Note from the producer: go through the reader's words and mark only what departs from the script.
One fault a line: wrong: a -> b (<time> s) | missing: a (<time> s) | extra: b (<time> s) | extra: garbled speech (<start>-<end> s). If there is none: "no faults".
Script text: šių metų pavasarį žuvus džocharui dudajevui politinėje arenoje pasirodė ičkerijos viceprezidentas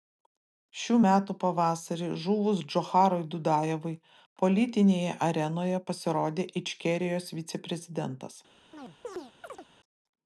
no faults